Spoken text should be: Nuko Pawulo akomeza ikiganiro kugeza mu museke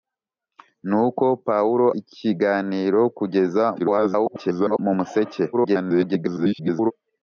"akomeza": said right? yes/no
no